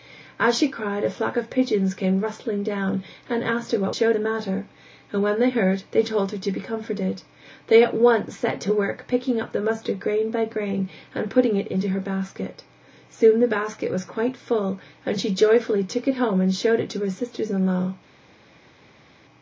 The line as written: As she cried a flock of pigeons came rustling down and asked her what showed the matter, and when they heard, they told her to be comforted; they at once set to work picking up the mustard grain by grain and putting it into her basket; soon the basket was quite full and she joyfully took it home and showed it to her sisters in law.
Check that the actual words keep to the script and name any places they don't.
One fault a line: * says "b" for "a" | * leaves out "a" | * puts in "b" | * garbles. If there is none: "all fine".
all fine